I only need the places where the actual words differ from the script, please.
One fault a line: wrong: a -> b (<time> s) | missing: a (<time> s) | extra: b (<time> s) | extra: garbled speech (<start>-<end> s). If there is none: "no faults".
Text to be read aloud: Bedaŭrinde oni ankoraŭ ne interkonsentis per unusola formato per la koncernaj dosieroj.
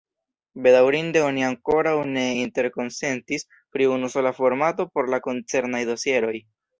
wrong: per -> pri (3.8 s)
wrong: per -> por (4.9 s)